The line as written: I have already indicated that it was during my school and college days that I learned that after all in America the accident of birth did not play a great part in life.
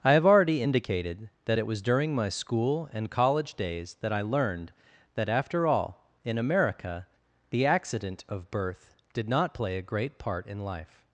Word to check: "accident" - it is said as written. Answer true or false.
true